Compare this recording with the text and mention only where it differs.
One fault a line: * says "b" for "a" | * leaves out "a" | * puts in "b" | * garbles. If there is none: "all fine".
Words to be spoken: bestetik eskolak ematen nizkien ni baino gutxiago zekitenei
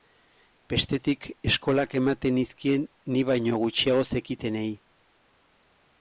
all fine